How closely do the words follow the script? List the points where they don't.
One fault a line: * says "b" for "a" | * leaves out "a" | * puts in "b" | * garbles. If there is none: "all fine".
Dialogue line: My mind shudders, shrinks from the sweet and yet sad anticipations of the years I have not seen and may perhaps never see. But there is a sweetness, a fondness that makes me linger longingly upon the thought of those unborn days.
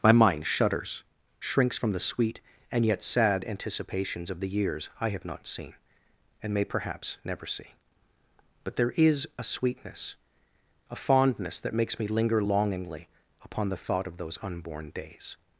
all fine